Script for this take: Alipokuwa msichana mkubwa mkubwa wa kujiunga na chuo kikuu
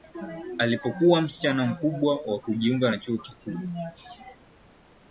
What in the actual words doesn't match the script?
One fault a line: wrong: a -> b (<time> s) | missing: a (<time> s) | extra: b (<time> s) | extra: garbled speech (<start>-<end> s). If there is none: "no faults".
missing: mkubwa (2.2 s)